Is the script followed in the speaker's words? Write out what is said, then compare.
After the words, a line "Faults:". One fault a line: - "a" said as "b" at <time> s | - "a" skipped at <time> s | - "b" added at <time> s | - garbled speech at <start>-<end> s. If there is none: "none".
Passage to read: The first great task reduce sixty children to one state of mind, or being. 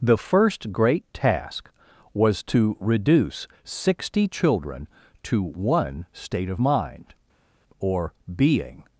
The first great task was to reduce sixty children to one state of mind, or being.
Faults:
- "was to" added at 2.1 s